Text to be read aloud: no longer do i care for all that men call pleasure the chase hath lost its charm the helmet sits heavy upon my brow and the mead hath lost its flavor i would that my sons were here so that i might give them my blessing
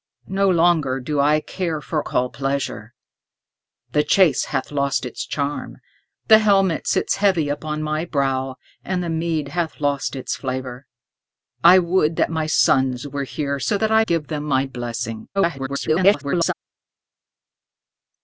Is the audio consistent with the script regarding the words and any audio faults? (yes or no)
no